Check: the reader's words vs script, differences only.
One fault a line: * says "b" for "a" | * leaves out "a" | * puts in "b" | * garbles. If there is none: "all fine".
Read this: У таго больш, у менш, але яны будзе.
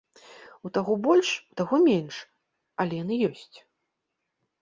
* puts in "таго"
* says "ёсць" for "будзе"